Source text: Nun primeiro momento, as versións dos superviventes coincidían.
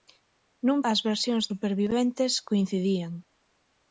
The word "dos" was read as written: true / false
false